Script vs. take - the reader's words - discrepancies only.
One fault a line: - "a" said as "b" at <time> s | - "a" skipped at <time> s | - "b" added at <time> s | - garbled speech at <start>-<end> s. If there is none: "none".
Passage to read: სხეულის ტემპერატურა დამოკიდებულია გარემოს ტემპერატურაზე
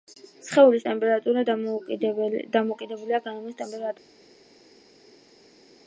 none